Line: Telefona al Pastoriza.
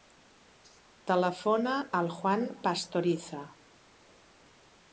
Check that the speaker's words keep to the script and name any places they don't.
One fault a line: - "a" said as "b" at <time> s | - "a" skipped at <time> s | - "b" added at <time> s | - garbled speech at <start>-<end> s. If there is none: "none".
- "Juan" added at 2.1 s